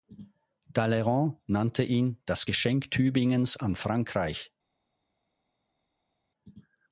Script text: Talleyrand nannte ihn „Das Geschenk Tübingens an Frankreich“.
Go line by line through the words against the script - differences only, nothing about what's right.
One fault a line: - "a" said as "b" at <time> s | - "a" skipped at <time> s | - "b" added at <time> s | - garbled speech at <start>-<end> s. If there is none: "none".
none